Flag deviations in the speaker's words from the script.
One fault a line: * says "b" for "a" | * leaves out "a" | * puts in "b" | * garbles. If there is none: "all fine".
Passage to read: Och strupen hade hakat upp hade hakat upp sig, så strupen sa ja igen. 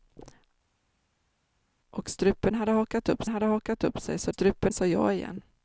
all fine